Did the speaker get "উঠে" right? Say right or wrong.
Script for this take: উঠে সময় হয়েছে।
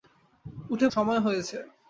right